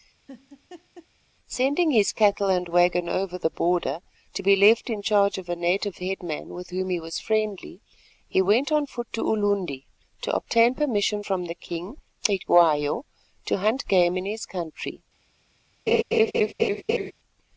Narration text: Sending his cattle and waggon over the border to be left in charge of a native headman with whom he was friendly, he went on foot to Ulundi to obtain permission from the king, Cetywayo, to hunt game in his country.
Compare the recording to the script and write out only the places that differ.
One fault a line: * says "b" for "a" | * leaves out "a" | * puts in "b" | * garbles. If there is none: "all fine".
all fine